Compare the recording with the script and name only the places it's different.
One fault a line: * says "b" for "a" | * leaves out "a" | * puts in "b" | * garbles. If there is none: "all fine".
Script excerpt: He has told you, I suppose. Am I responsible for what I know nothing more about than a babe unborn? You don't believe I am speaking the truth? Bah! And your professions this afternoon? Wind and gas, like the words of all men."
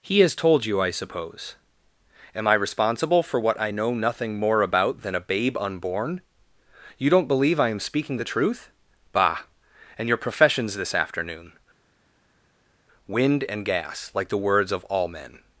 all fine